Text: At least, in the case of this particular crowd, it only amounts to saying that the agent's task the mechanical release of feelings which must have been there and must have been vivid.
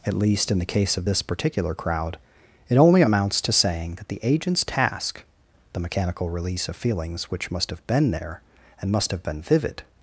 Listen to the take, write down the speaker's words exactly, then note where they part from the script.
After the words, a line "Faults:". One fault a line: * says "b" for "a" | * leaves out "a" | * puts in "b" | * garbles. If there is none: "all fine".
At least, in the case of this particular crowd, it only amounts to saying that the agent's task the mechanical release of feelings which must have been there and must have been vivid.
Faults:
all fine